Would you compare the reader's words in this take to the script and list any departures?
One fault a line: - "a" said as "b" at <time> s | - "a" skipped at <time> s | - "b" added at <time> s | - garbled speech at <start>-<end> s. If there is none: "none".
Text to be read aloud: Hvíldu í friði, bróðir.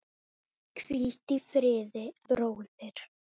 none